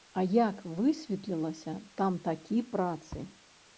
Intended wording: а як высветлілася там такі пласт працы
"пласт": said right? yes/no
no